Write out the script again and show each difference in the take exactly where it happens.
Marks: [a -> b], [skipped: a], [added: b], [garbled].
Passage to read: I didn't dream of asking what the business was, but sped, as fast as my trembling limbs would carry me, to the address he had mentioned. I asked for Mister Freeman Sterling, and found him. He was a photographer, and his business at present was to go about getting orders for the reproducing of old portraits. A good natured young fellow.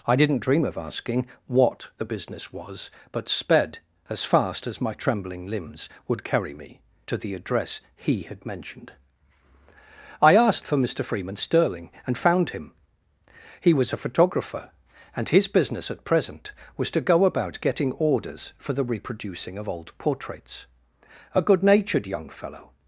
I didn't dream of asking what the business was, but sped, as fast as my trembling limbs would carry me, to the address he had mentioned. I asked for Mister Freeman Sterling, and found him. He was a photographer, and his business at present was to go about getting orders for the reproducing of old portraits. A good natured young fellow.